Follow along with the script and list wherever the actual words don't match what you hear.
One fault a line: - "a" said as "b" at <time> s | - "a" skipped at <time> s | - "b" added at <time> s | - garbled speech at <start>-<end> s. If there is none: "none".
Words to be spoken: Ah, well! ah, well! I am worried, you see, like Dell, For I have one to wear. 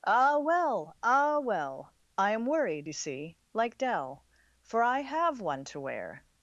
none